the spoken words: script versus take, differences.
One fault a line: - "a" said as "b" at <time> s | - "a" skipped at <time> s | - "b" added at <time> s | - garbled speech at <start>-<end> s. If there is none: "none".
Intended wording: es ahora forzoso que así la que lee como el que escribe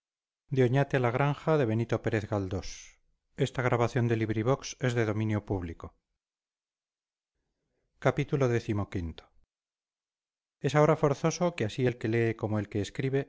- "la" said as "el" at 11.8 s